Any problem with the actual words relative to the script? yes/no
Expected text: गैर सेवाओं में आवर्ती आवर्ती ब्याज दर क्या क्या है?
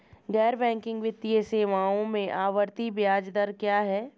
yes